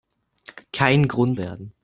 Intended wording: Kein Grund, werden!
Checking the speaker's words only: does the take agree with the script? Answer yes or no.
yes